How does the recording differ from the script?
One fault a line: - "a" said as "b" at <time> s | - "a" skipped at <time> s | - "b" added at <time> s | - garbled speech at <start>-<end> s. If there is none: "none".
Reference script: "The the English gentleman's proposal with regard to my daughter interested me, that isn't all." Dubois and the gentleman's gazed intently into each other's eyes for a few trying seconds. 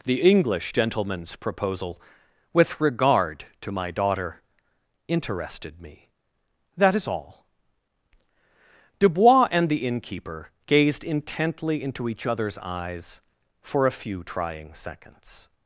- "the" skipped at 0.2 s
- "isn't" said as "is" at 6.9 s
- "gentleman's" said as "innkeeper" at 9.9 s